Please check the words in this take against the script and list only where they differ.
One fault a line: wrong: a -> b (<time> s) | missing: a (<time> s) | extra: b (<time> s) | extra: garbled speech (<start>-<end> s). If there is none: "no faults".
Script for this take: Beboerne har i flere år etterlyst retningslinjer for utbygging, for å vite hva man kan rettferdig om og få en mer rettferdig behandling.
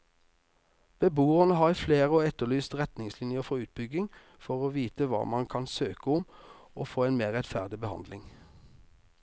wrong: rettferdig -> søke (5.8 s)